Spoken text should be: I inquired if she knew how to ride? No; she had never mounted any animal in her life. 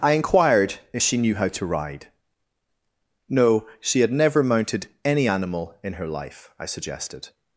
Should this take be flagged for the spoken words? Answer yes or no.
yes